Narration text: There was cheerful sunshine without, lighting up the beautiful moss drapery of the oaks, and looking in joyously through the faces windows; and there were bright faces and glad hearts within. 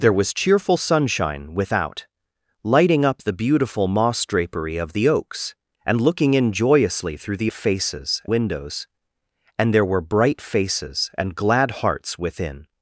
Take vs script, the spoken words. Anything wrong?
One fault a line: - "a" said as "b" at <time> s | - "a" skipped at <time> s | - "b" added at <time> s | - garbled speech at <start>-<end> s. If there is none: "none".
none